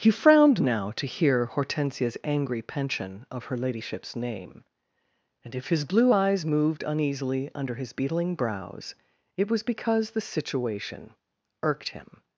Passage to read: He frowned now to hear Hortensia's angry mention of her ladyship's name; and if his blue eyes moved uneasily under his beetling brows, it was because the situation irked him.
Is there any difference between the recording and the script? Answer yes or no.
yes